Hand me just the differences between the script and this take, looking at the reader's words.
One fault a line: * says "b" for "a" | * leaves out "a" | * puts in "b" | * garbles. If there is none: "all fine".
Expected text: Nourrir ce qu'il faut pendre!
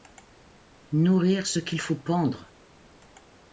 all fine